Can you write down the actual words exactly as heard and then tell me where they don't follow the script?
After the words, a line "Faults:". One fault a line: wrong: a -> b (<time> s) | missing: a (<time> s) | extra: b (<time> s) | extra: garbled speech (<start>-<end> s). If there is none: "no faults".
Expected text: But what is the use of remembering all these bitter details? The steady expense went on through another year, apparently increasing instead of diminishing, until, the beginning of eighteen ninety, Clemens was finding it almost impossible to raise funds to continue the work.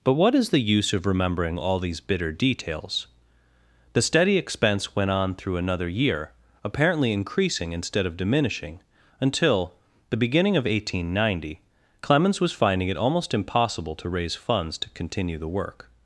But what is the use of remembering all these bitter details? The steady expense went on through another year, apparently increasing instead of diminishing, until, the beginning of eighteen ninety, Clemens was finding it almost impossible to raise funds to continue the work.
Faults:
no faults